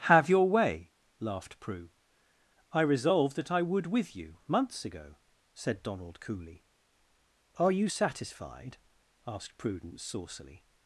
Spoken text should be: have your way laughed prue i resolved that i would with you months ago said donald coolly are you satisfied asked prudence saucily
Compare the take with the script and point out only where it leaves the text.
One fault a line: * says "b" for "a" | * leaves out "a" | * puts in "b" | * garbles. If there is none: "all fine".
all fine